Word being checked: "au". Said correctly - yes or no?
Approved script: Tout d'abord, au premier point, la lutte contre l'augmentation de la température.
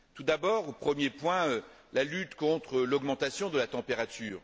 yes